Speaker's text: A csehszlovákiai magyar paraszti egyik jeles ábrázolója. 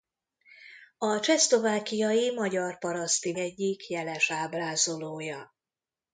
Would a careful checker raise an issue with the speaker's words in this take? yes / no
no